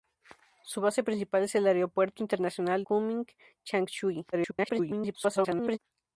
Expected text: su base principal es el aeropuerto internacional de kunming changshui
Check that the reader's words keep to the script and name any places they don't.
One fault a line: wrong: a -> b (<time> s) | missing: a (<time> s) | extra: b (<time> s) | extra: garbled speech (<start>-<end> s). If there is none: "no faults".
missing: de (2.8 s)
extra: garbled speech (4.3-5.8 s)